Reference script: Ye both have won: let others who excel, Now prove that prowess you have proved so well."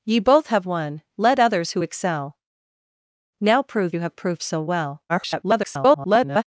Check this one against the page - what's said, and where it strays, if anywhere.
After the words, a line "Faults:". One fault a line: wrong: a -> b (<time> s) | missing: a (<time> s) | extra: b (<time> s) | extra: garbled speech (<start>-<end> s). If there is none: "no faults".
Ye both have won: let others who excel, Now prove you have proved so well." [garbled]
Faults:
missing: that prowess (3.9 s)
extra: garbled speech (5.1-6.4 s)